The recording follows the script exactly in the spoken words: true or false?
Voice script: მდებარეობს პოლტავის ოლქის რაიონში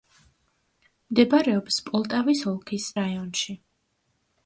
true